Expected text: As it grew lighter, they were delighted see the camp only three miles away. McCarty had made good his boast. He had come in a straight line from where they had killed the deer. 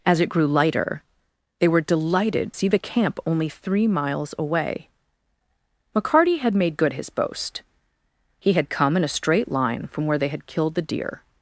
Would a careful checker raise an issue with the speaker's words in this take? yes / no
no